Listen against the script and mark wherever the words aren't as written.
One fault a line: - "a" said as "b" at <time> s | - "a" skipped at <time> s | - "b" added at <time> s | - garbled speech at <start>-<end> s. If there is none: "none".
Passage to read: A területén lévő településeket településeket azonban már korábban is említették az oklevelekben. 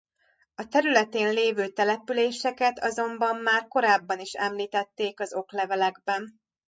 - "településeket" skipped at 2.8 s